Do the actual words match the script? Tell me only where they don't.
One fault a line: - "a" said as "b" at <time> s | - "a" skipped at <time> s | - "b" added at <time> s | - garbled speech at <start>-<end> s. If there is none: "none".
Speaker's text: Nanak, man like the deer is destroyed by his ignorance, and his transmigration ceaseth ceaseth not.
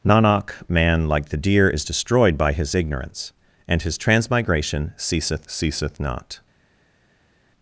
none